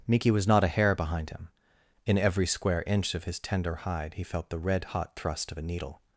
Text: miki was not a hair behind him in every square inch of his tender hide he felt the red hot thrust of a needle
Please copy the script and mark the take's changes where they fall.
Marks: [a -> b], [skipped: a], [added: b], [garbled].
miki was not a hair behind him in every square inch of his tender hide he felt the red hot thrust of a needle